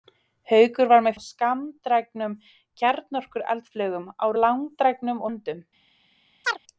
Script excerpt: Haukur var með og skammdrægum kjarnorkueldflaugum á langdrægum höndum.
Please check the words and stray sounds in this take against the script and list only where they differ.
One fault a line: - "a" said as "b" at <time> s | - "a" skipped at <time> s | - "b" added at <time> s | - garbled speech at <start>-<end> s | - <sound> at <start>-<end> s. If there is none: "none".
- chirp at 6.4-6.6 s